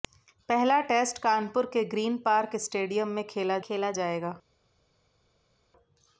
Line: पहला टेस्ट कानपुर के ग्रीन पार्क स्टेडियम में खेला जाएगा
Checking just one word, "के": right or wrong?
right